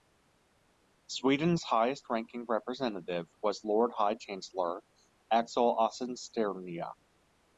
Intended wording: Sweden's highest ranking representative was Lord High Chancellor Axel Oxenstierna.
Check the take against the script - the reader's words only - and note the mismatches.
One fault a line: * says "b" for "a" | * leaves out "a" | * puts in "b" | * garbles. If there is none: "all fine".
all fine